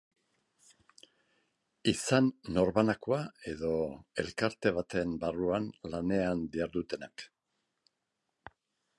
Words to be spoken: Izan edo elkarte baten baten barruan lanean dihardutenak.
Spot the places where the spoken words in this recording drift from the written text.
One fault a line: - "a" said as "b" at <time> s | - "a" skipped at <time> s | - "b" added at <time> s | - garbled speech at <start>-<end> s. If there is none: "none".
- "norbanakoa" added at 2.5 s
- "baten" skipped at 5.1 s